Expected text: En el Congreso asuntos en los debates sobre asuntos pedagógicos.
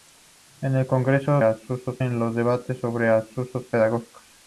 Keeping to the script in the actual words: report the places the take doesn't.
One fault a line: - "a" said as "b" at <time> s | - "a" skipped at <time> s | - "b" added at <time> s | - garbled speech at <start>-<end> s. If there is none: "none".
none